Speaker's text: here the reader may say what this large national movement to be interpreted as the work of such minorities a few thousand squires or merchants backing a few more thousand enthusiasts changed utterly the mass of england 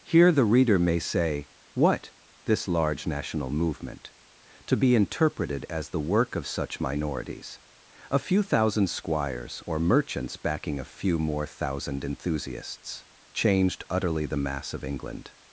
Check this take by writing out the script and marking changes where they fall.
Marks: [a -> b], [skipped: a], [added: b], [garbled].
here the reader may say what this large national movement to be interpreted as the work of such minorities a few thousand squires or merchants backing a few more thousand enthusiasts changed utterly the mass of england